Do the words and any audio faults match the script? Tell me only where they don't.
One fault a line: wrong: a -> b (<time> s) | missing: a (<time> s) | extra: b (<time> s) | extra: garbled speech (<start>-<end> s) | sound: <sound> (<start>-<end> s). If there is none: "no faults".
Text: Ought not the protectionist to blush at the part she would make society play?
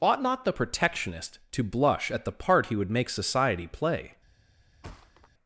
wrong: she -> he (2.7 s)
sound: thud (4.8-5.3 s)